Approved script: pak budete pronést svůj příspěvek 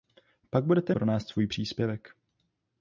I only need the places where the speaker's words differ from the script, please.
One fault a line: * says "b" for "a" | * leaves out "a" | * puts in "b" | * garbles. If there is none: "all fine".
all fine